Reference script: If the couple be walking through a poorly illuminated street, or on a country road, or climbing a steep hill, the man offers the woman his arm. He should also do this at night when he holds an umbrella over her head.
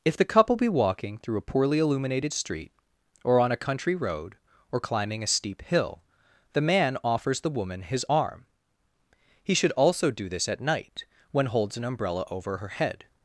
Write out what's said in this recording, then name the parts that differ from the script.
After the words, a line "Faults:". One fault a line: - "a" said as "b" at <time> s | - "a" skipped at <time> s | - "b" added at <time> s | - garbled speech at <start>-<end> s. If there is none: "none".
If the couple be walking through a poorly illuminated street, or on a country road, or climbing a steep hill, the man offers the woman his arm. He should also do this at night when holds an umbrella over her head.
Faults:
- "he" skipped at 11.5 s